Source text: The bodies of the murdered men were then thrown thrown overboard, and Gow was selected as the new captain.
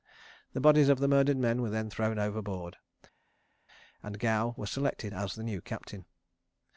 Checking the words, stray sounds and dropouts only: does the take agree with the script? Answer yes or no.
no